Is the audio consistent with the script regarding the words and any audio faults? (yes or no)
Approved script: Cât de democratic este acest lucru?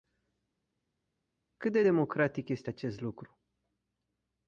yes